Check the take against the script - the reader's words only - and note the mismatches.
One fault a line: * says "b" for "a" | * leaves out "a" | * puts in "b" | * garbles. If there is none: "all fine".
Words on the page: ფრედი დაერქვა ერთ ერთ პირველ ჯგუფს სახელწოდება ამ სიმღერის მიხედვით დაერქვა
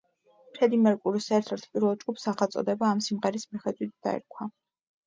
* says "მერკურის" for "დაერქვა"